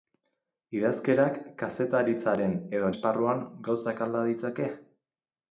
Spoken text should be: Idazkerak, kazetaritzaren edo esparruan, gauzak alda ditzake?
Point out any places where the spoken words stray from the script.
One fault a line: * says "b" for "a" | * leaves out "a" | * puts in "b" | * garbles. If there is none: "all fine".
all fine